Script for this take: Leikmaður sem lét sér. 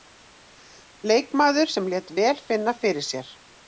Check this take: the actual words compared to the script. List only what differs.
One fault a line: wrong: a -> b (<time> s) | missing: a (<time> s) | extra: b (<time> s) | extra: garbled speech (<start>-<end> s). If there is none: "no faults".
extra: vel finna fyrir (2.2 s)